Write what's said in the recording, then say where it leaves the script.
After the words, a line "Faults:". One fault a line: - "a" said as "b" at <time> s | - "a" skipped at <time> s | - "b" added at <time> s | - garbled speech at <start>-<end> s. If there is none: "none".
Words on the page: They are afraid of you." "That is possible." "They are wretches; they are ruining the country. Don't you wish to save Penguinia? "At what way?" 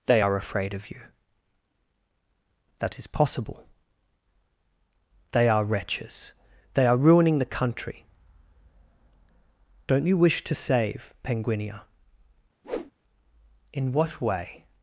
They are afraid of you." "That is possible." "They are wretches; they are ruining the country. Don't you wish to save Penguinia? "In what way?"
Faults:
- "At" said as "In" at 13.7 s